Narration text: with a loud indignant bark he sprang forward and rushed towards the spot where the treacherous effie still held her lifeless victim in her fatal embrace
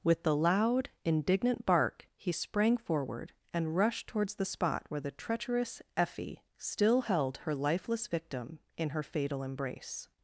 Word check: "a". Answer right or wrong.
wrong